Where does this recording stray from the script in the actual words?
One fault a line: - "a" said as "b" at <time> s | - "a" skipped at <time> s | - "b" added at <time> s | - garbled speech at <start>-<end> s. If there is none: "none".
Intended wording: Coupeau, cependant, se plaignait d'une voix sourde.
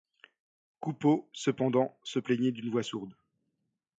none